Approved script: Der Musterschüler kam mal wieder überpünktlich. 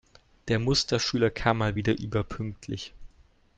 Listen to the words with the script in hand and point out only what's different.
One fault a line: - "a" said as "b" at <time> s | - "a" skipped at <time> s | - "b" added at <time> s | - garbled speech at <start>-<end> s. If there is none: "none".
none